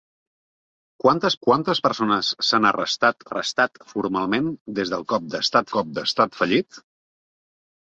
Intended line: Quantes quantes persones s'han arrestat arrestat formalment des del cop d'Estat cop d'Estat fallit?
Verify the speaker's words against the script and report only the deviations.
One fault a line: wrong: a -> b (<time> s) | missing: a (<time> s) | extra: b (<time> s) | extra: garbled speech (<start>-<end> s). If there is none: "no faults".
no faults